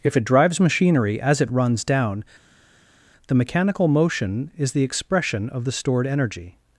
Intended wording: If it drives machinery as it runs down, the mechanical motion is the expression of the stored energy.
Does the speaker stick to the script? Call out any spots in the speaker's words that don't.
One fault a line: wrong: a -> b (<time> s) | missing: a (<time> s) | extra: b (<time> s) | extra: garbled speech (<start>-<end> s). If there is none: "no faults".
no faults